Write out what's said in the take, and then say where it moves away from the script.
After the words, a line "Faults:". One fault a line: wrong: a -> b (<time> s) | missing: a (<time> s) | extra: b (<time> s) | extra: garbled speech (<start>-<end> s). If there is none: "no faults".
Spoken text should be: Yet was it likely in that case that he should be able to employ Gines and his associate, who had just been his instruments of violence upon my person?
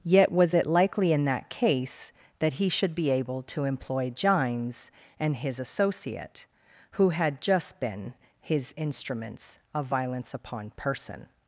Yet was it likely in that case that he should be able to employ Gines and his associate, who had just been his instruments of violence upon person?
Faults:
missing: my (10.7 s)